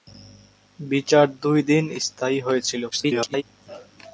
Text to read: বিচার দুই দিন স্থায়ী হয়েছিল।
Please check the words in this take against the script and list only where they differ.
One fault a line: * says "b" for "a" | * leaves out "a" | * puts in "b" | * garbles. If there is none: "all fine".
* garbles